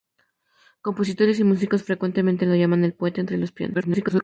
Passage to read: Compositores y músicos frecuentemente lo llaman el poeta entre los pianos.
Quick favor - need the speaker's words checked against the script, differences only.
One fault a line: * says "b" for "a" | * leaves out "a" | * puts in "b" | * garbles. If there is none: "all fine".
* garbles